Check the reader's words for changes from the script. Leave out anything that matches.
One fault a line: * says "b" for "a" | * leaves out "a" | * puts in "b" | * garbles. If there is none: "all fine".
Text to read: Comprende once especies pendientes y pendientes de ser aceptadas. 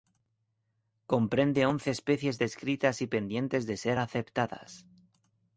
* says "descritas" for "pendientes"